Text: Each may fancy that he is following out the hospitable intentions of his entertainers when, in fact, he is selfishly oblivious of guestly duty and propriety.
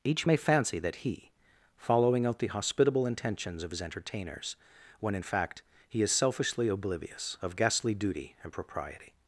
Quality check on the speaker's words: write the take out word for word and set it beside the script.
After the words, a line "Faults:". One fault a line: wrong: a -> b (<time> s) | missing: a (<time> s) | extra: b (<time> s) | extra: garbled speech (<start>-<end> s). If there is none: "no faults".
Each may fancy that he following out the hospitable intentions of his entertainers when, in fact, he is selfishly oblivious of guestly duty and propriety.
Faults:
missing: is (1.3 s)